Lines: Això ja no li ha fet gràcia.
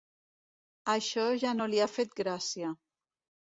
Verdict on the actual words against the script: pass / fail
pass